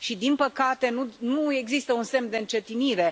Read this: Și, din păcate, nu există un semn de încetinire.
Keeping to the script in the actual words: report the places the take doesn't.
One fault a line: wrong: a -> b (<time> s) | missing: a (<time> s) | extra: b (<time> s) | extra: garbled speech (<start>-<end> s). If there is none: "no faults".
no faults